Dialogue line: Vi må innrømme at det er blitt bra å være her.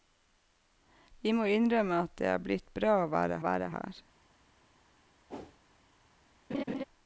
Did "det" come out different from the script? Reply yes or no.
no